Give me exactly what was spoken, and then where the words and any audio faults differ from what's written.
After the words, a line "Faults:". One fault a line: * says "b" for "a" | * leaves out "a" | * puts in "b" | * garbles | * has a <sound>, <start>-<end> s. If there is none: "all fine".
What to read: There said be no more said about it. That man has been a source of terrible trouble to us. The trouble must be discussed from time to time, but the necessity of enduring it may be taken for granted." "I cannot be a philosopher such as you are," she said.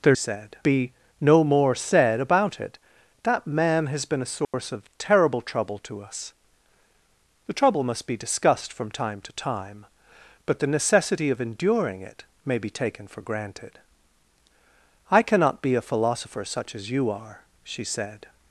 There said be no more said about it. That man has been a source of terrible trouble to us. The trouble must be discussed from time to time, but the necessity of enduring it may be taken for granted." "I cannot be a philosopher such as you are," she said.
Faults:
* has a dropout, 4.4-4.5 s